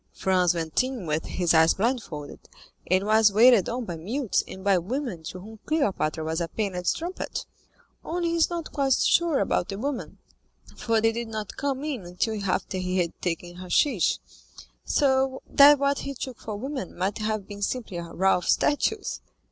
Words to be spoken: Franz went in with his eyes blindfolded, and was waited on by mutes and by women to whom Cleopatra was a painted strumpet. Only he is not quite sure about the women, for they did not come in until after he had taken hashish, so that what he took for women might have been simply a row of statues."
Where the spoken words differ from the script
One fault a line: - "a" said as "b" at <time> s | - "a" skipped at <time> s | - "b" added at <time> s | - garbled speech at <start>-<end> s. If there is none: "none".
none